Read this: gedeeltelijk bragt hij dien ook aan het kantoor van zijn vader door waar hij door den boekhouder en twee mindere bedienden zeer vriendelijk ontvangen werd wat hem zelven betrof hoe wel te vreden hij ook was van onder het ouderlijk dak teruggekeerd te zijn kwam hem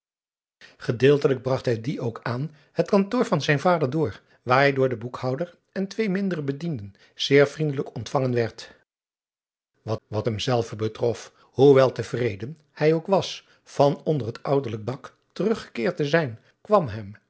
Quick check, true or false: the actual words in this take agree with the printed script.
false